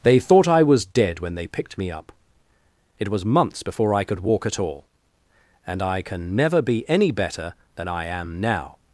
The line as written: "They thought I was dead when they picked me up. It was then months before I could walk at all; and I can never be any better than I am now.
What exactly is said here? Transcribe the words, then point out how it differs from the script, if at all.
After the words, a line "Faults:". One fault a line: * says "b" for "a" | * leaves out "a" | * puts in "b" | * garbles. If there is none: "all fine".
"They thought I was dead when they picked me up. It was months before I could walk at all; and I can never be any better than I am now.
Faults:
* leaves out "then"